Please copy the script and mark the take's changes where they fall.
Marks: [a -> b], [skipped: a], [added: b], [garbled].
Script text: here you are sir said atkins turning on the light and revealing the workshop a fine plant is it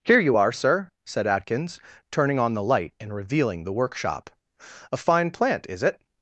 here you are sir said atkins turning on the light and revealing the workshop a fine plant is it